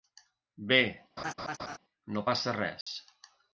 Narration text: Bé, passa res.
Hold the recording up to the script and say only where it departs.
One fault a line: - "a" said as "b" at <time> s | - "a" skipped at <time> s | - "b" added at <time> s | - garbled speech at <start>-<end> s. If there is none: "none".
- "no" added at 2.2 s